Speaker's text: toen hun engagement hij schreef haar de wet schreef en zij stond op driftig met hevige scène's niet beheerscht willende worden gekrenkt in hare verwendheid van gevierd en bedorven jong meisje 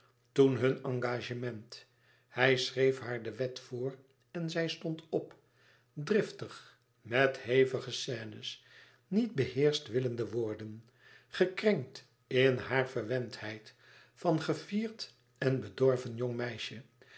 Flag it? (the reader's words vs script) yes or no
yes